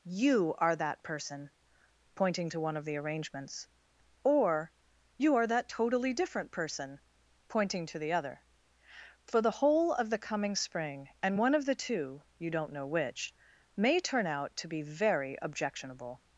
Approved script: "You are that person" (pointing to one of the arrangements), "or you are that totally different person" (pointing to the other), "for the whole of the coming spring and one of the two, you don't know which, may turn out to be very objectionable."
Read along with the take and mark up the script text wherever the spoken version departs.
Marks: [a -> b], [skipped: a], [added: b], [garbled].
"You are that person" (pointing to one of the arrangements), "or you are that totally different person" (pointing to the other), "for the whole of the coming spring and one of the two, you don't know which, may turn out to be very objectionable."